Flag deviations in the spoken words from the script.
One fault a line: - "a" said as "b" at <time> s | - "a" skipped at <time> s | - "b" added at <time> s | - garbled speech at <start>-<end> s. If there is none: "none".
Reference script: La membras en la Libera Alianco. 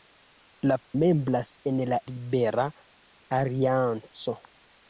none